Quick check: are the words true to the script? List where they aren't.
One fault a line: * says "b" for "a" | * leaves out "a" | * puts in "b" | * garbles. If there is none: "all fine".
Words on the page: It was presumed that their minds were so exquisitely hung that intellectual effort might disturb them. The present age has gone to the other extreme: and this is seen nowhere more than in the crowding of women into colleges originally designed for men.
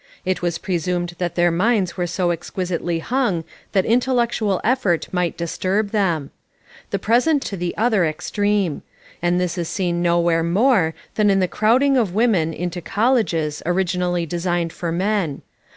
* leaves out "age has gone"